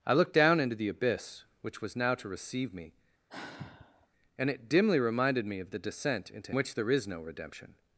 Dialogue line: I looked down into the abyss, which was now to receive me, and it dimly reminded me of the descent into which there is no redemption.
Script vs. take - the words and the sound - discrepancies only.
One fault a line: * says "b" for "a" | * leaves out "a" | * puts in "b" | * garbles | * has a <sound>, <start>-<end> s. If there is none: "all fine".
* has a sigh, 3.3-4.1 s